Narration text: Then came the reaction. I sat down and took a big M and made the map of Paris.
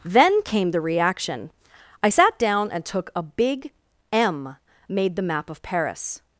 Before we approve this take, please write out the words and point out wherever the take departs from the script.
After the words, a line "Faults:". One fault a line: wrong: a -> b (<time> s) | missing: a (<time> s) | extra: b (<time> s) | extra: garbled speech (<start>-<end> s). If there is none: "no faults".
Then came the reaction. I sat down and took a big M made the map of Paris.
Faults:
missing: and (4.5 s)